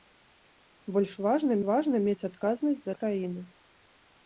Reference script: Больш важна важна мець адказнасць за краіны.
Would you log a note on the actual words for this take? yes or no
no